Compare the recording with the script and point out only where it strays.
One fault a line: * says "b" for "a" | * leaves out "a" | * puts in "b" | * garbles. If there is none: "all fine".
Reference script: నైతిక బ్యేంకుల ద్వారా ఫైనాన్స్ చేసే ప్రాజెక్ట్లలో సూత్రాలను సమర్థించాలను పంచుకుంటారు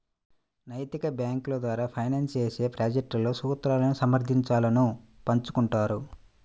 all fine